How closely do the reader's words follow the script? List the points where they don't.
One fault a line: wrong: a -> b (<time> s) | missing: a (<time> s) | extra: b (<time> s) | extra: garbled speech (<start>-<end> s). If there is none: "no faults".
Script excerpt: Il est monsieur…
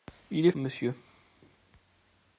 no faults